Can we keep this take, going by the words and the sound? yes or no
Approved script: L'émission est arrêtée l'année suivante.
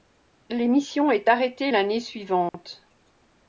no